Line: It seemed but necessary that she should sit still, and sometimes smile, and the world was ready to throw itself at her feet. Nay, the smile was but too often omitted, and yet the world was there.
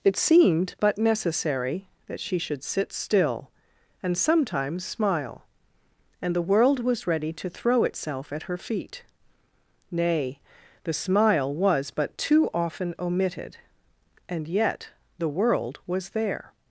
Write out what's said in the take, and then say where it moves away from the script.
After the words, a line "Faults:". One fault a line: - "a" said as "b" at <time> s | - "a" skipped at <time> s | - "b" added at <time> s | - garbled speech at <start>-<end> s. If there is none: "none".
It seemed but necessary that she should sit still, and sometimes smile, and the world was ready to throw itself at her feet. Nay, the smile was but too often omitted, and yet the world was there.
Faults:
none